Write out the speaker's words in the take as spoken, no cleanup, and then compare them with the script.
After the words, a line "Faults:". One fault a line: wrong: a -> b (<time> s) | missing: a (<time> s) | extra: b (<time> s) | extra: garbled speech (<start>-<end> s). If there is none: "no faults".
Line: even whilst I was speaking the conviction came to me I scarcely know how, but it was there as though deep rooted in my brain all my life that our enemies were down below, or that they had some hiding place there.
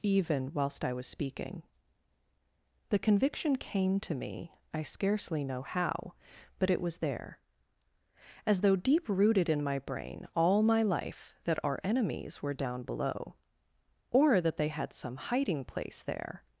even whilst I was speaking the conviction came to me I scarcely know how, but it was there as though deep rooted in my brain all my life that our enemies were down below, or that they had some hiding place there.
Faults:
no faults